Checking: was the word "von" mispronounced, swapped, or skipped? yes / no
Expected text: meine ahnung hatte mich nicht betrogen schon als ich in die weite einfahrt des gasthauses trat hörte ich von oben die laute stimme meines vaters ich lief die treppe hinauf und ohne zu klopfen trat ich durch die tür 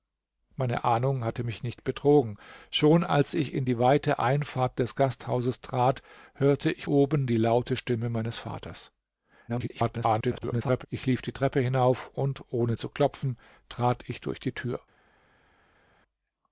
yes